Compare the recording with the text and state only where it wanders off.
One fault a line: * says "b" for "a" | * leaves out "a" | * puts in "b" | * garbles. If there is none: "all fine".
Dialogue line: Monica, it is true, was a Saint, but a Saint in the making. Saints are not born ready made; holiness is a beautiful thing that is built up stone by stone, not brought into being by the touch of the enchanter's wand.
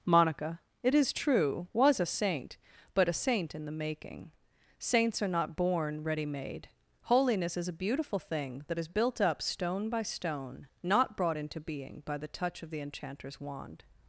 all fine